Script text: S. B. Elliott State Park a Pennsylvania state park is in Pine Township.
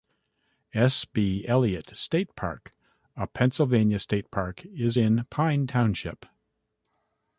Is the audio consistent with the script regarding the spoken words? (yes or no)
yes